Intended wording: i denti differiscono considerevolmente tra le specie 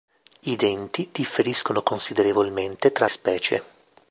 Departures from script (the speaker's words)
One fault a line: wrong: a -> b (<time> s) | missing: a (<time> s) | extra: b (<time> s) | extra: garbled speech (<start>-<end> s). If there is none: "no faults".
missing: le (3.1 s)